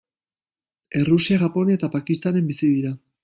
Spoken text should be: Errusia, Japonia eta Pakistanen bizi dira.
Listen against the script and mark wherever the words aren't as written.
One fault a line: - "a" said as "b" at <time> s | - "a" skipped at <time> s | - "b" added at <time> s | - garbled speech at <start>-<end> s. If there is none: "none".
none